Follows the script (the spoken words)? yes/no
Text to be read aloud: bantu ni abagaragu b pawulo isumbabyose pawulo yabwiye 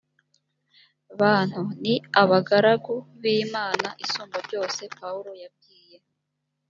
no